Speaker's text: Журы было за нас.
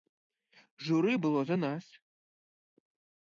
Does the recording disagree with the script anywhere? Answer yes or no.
no